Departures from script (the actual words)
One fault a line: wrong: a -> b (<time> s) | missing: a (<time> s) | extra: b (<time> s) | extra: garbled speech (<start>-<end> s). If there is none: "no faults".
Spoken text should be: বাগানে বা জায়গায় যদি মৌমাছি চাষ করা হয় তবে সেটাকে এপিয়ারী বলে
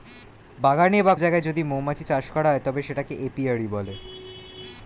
no faults